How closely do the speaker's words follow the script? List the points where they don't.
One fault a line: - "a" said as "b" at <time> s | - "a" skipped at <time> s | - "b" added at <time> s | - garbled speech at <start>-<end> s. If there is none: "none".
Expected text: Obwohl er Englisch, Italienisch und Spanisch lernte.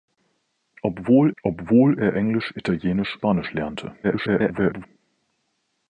- "obwohl" added at 1.4 s
- "und" skipped at 3.2 s
- garbled speech at 4.0-4.9 s